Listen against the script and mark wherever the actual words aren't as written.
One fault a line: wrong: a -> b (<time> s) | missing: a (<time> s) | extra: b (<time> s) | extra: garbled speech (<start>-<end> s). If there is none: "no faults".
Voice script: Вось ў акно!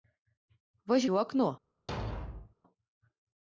no faults